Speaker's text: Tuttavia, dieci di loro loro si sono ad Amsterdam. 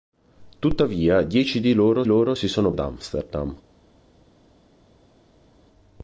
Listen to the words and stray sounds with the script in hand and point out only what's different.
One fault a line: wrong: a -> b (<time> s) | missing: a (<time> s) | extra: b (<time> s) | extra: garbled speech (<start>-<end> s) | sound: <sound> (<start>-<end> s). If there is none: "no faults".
no faults